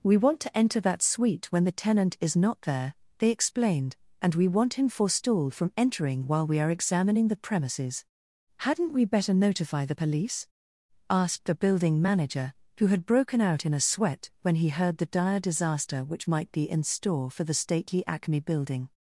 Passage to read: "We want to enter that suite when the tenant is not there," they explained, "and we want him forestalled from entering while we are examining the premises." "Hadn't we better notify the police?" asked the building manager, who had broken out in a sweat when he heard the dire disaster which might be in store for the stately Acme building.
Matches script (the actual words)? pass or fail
pass